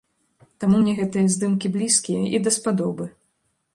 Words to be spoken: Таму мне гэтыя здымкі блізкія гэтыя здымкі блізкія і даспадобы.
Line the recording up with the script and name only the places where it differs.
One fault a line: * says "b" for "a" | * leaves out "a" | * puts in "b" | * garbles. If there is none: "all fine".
* leaves out "гэтыя здымкі блізкія"